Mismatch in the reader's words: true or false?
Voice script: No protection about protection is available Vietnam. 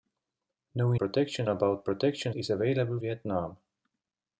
false